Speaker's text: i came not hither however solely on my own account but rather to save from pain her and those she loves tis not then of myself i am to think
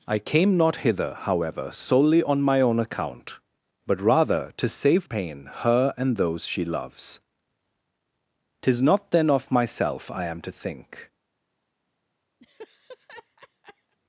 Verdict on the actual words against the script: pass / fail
fail